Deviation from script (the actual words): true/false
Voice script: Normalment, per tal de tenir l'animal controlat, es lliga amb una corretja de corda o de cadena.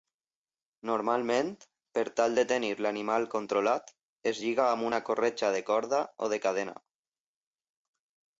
false